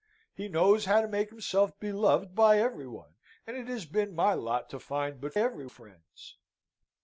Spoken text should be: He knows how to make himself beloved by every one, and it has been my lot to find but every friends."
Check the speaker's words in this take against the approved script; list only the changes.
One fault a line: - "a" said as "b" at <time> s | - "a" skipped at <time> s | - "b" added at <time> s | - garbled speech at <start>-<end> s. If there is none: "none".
none